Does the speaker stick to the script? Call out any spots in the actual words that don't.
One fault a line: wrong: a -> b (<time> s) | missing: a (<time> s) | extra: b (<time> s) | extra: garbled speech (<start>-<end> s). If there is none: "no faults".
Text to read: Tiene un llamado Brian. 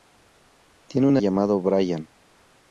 no faults